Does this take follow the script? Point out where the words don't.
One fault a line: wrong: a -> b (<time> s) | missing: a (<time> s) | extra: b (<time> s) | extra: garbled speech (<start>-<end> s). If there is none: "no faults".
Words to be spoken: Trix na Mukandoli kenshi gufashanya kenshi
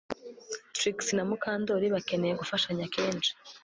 wrong: kenshi -> bakeneye (1.9 s)